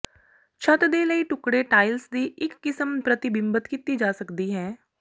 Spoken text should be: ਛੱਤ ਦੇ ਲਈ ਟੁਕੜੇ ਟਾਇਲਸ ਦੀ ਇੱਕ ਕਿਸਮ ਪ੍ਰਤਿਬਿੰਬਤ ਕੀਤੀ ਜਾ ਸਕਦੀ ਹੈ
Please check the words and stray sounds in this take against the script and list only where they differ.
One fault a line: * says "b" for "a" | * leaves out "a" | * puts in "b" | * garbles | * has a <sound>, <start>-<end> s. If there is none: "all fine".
all fine